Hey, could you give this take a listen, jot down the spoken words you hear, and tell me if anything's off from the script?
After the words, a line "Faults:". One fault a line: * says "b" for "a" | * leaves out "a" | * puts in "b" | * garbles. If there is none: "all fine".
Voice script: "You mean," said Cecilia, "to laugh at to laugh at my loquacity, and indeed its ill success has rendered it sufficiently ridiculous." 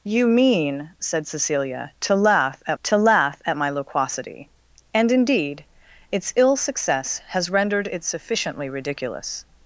"You mean," said Cecilia, "to laugh at to laugh at my loquacity, and indeed its ill success has rendered it sufficiently ridiculous."
Faults:
all fine